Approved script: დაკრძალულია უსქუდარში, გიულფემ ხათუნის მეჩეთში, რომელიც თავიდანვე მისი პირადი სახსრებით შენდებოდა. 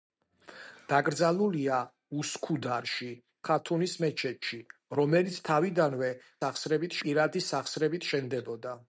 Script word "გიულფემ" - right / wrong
wrong